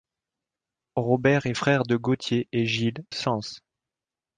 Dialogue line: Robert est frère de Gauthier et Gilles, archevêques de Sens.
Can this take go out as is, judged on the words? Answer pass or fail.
fail